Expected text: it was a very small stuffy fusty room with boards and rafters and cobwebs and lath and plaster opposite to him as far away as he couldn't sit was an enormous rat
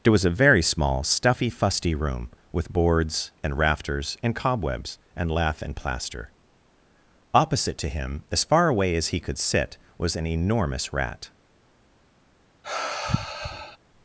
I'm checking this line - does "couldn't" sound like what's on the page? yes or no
no